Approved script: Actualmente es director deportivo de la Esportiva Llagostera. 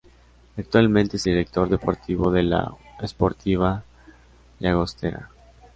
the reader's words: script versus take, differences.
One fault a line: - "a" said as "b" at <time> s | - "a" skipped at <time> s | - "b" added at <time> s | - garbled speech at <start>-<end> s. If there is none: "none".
none